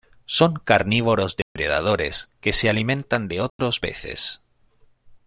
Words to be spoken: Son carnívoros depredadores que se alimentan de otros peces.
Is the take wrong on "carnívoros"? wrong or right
right